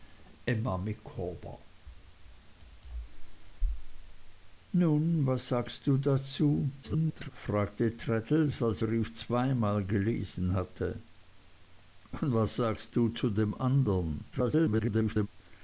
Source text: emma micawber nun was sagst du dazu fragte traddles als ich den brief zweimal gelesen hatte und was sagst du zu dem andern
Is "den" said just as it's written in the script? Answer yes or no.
no